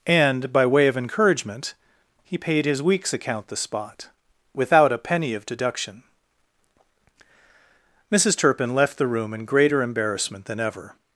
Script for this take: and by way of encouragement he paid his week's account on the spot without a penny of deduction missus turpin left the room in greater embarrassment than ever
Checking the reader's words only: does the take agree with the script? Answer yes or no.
no